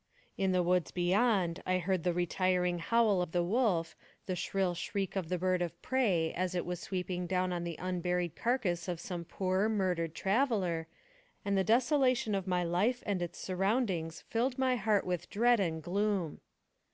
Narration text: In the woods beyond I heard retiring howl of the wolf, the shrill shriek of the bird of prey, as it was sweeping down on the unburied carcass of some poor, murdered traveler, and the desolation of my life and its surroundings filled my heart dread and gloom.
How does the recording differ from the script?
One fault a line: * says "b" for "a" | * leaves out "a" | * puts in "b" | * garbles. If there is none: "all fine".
* puts in "the"
* puts in "with"